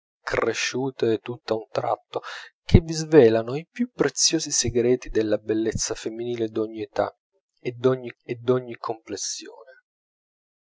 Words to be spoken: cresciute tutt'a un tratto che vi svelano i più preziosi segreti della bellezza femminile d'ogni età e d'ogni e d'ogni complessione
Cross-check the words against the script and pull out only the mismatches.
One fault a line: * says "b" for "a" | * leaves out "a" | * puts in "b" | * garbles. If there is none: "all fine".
all fine